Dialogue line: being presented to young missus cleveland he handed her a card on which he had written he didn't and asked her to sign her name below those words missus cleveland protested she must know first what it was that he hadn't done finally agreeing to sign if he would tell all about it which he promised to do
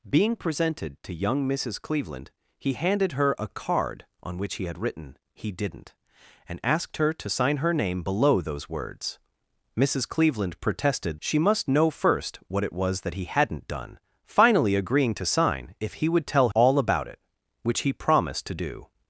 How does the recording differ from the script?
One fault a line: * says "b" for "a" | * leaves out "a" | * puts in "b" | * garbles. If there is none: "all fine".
all fine